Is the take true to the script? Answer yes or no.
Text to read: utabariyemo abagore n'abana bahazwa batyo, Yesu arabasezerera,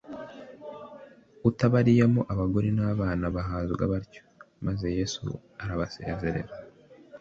no